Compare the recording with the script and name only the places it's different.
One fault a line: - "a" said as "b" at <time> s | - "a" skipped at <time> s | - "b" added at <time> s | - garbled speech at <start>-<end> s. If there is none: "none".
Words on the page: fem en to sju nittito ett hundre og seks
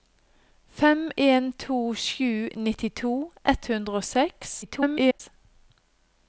- garbled speech at 4.6-5.2 s